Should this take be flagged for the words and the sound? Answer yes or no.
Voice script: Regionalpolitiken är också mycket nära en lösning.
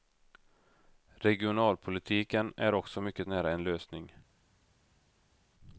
no